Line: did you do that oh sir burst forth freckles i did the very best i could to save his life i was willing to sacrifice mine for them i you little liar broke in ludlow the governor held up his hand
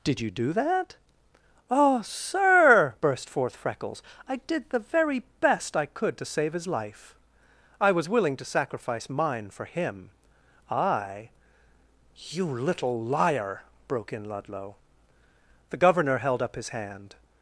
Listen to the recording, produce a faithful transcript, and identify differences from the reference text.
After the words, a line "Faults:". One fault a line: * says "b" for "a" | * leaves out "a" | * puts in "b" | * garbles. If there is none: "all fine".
did you do that oh sir burst forth freckles i did the very best i could to save his life i was willing to sacrifice mine for him i you little liar broke in ludlow the governor held up his hand
Faults:
* says "him" for "them"